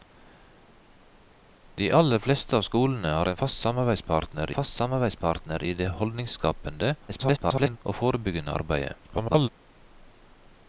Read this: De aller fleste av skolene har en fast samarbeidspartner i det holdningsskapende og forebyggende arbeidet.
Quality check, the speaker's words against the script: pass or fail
fail